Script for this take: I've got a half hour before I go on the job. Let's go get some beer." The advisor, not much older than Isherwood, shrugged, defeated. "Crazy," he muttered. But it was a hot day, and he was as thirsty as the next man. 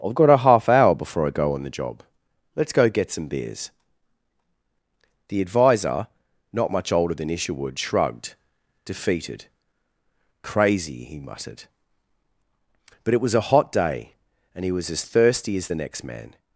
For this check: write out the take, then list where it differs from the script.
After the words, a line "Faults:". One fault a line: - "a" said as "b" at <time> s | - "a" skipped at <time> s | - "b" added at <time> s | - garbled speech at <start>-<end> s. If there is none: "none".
I've got a half hour before I go on the job. Let's go get some beers." The advisor, not much older than Isherwood, shrugged, defeated. "Crazy," he muttered. But it was a hot day, and he was as thirsty as the next man.
Faults:
- "beer" said as "beers" at 3.3 s